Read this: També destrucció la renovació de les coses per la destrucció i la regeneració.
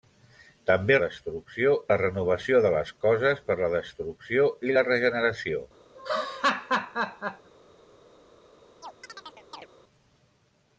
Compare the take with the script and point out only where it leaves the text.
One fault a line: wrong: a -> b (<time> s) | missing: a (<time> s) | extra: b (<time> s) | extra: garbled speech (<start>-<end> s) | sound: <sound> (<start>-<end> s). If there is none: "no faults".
sound: laugh (5.9-7.5 s)
sound: chirp (8.8-9.7 s)